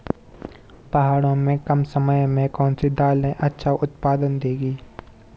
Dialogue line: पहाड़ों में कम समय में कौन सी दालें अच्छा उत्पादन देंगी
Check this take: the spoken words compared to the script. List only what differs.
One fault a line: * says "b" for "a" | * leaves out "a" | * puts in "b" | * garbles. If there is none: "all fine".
all fine